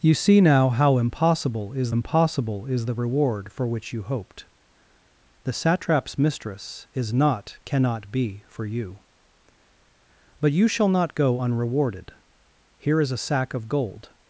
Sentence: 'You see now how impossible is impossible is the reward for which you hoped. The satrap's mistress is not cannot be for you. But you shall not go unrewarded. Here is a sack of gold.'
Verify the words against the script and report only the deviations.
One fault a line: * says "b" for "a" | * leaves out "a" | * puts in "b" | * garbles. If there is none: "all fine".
all fine